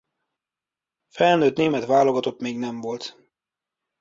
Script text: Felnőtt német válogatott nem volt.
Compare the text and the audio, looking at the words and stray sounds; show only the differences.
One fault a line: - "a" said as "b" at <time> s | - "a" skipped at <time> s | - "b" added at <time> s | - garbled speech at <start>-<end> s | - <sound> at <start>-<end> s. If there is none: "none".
- "még" added at 2.4 s